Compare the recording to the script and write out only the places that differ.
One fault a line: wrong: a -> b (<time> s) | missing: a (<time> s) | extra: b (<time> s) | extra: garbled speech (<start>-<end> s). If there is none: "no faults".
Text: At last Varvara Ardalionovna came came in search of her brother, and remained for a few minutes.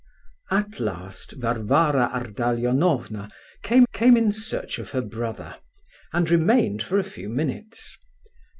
no faults